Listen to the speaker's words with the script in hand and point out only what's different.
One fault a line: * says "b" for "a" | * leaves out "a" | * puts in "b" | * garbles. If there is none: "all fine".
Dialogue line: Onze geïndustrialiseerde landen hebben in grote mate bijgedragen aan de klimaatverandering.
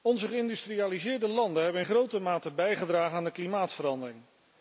all fine